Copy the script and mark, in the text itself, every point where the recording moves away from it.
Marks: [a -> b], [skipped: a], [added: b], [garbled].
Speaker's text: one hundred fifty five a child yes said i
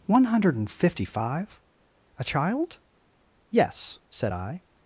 one hundred fifty five a child yes said i